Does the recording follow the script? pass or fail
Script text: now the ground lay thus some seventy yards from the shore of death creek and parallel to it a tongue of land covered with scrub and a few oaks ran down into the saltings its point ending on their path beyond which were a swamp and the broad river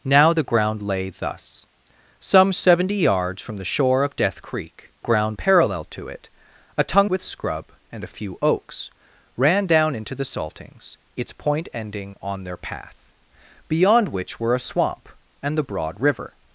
fail